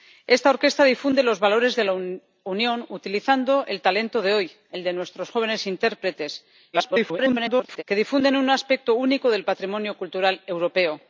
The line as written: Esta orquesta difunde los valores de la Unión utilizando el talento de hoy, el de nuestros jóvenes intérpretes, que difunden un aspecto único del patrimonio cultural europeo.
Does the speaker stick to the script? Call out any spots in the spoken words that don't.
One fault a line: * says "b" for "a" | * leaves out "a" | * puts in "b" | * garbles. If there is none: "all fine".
* garbles